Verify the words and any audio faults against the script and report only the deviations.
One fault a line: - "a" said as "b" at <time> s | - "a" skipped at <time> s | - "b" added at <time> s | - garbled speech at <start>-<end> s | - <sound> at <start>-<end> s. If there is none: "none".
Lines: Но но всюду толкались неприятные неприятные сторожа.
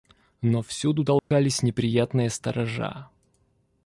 - "но" skipped at 0.6 s
- dropout at 1.2-1.3 s
- "неприятные" skipped at 2.3 s